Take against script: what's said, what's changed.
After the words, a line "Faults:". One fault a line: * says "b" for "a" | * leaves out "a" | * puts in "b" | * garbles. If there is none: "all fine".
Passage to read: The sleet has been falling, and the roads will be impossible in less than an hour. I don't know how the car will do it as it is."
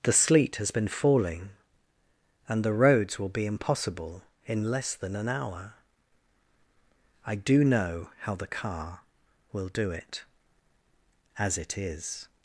The sleet has been falling, and the roads will be impossible in less than an hour. I do know how the car will do it as it is."
Faults:
* says "do" for "don't"